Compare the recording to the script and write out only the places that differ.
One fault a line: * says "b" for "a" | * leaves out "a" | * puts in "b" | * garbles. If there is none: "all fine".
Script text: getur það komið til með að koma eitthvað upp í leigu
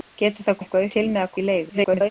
* says "eitthvað" for "komið"
* leaves out "koma eitthvað upp"
* garbles